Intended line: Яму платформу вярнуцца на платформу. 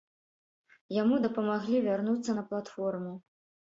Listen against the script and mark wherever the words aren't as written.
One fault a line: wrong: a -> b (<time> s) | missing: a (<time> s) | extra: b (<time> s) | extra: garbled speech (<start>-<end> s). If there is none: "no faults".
wrong: платформу -> дапамаглі (1.3 s)